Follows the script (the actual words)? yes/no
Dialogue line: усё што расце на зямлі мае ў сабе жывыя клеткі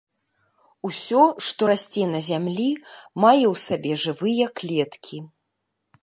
yes